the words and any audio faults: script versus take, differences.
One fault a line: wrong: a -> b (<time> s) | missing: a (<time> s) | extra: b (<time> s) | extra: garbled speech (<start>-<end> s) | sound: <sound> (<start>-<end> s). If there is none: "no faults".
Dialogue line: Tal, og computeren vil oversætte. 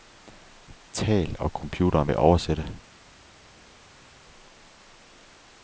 no faults